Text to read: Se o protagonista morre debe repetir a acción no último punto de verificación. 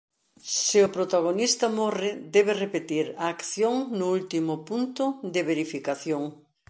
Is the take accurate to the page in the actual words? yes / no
yes